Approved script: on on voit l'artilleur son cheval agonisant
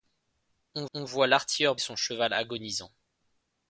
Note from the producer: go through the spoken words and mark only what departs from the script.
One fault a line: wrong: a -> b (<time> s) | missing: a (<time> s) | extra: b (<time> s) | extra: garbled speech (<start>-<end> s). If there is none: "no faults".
no faults